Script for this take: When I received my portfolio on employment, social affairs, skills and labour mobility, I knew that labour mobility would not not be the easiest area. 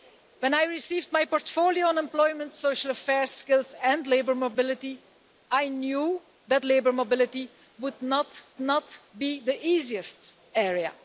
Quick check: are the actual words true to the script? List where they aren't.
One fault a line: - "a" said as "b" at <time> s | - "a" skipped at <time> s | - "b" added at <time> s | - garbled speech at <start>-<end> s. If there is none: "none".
none